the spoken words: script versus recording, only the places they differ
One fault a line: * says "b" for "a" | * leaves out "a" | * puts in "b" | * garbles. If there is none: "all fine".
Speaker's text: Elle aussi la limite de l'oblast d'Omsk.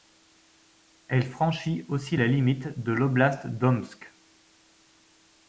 * puts in "franchit"